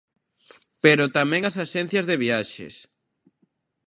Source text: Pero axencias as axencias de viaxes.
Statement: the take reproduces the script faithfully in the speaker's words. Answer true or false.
false